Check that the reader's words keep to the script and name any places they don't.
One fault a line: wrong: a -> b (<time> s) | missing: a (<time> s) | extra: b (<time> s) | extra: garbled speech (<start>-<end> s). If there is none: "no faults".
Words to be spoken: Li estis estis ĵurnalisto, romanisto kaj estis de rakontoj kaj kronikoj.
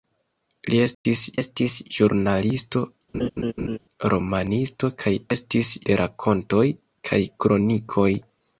no faults